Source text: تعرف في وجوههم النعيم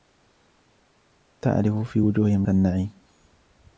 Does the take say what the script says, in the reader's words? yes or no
yes